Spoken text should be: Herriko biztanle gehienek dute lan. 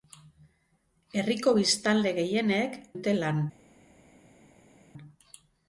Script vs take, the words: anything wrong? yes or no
no